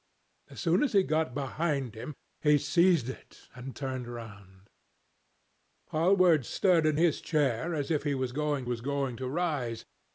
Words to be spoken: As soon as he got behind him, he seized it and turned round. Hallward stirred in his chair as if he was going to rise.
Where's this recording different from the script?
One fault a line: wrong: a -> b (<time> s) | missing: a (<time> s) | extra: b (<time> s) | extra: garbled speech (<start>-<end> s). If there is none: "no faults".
extra: was going (8.6 s)